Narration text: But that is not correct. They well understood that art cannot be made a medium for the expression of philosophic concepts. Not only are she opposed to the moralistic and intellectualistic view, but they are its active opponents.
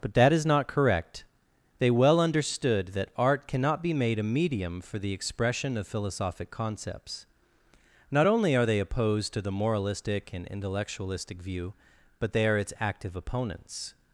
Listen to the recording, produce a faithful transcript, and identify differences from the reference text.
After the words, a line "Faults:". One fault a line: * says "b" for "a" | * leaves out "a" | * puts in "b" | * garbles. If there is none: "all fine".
But that is not correct. They well understood that art cannot be made a medium for the expression of philosophic concepts. Not only are they opposed to the moralistic and intellectualistic view, but they are its active opponents.
Faults:
* says "they" for "she"